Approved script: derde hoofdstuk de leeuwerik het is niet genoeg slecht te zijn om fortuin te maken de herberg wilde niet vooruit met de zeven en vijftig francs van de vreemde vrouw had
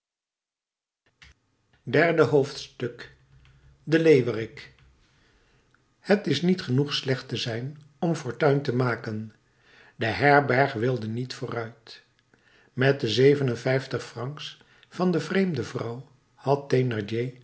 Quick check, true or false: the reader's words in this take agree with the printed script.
true